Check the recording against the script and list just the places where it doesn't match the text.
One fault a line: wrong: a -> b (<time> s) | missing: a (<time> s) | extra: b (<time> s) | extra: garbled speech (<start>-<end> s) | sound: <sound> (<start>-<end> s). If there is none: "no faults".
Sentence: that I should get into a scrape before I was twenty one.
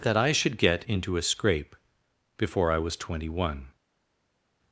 no faults